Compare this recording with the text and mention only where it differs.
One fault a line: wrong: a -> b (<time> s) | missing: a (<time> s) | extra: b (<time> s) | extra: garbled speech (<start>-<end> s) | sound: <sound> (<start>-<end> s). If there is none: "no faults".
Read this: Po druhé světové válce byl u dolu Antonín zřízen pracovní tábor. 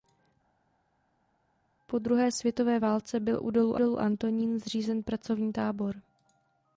extra: dolu (3.7 s)